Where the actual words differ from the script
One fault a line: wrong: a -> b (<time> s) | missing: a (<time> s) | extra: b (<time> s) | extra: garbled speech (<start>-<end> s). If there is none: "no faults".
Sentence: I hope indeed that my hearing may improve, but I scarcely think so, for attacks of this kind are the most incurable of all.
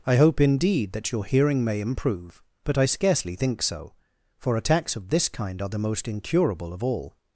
wrong: my -> your (1.1 s)